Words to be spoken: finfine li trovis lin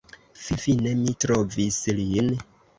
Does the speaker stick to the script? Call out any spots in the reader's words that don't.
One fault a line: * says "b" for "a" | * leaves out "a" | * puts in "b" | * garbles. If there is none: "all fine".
* says "mi" for "li"